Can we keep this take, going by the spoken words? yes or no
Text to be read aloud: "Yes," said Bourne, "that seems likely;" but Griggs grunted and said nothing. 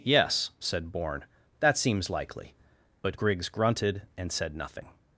yes